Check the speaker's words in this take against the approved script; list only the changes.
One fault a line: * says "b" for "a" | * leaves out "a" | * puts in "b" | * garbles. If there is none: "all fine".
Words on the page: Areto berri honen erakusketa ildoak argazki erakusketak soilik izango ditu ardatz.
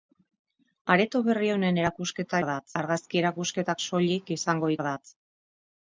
* says "ardatz" for "ildoak"
* leaves out "ditu"